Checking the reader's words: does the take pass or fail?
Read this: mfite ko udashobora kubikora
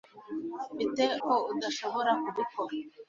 pass